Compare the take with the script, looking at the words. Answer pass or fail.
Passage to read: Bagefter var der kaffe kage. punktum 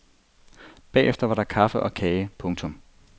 fail